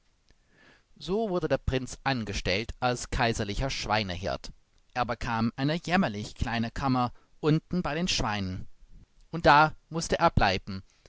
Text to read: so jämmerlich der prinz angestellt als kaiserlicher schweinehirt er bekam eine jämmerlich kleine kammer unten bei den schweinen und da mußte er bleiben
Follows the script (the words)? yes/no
no